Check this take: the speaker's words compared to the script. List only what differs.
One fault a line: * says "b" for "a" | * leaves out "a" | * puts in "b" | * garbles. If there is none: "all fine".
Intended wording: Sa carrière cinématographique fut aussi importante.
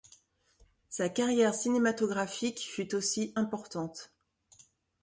all fine